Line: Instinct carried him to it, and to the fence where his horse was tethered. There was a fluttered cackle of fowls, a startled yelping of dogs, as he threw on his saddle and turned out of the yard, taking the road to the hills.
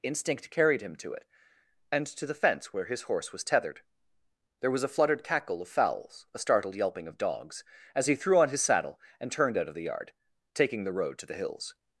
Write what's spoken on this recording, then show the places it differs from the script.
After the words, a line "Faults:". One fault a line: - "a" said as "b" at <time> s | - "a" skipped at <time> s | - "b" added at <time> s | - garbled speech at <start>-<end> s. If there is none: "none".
Instinct carried him to it, and to the fence where his horse was tethered. There was a fluttered cackle of fowls, a startled yelping of dogs, as he threw on his saddle and turned out of the yard, taking the road to the hills.
Faults:
none